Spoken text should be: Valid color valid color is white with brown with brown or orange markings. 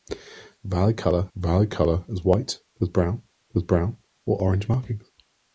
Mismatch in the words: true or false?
false